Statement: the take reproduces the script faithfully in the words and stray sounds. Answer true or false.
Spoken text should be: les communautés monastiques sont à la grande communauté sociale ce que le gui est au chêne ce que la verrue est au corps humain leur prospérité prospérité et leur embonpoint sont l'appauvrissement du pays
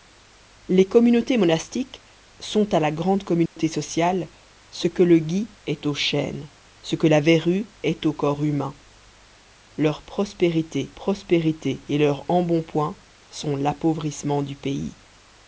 false